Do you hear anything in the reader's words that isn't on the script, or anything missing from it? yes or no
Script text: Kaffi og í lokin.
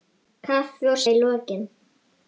no